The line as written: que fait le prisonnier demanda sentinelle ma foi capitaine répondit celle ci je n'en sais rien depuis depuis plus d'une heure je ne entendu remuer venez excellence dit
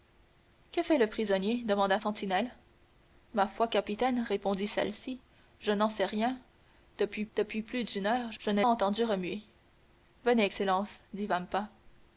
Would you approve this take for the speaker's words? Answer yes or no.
yes